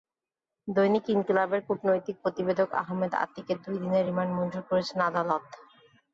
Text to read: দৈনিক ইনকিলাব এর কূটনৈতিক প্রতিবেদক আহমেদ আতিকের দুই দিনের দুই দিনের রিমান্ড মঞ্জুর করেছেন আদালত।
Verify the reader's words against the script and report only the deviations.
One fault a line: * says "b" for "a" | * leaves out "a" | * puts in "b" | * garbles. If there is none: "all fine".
* leaves out "দুই দিনের"